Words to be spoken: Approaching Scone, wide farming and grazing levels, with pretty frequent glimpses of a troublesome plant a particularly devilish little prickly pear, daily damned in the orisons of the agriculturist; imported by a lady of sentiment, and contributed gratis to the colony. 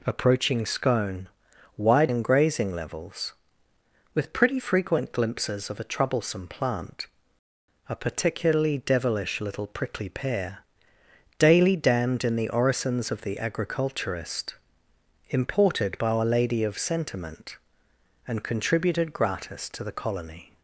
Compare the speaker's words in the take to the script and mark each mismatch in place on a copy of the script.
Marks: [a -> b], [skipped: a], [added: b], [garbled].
Approaching Scone, wide [skipped: farming] and grazing levels, with pretty frequent glimpses of a troublesome plant a particularly devilish little prickly pear, daily damned in the orisons of the agriculturist; imported by a lady of sentiment, and contributed gratis to the colony.